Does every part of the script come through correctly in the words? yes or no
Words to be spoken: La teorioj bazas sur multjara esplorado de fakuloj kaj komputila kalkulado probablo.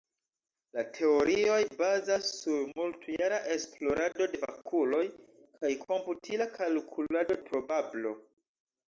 yes